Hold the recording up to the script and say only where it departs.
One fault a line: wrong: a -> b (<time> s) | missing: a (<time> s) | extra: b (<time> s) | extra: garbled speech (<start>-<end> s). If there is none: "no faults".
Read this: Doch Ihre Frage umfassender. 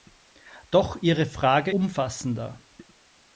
no faults